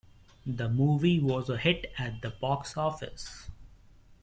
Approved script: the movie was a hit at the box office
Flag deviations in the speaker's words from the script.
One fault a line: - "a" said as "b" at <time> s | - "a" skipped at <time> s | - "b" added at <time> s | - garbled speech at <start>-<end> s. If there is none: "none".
none